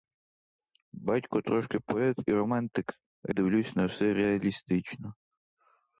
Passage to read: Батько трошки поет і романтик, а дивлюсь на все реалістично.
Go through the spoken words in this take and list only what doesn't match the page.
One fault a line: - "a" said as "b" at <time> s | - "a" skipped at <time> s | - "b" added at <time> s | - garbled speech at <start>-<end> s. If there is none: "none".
none